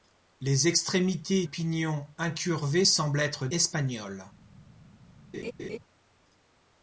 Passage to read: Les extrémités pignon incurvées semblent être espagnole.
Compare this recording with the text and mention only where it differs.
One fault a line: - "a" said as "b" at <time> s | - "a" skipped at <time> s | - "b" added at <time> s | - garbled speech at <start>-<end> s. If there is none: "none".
none